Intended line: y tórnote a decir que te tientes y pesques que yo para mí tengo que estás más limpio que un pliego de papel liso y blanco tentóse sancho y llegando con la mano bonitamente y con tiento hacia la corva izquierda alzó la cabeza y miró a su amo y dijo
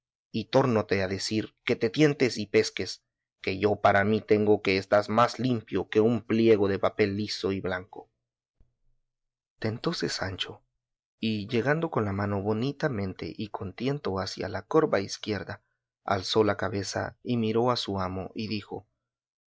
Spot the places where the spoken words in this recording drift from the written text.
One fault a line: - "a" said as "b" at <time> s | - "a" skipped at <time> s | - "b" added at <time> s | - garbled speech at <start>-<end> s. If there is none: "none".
none